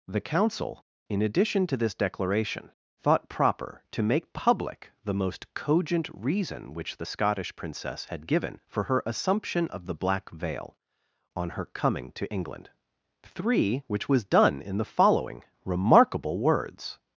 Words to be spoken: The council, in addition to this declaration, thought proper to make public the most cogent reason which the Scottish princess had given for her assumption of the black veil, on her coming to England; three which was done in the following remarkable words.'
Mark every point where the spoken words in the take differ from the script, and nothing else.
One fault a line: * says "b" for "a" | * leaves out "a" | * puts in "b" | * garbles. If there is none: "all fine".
all fine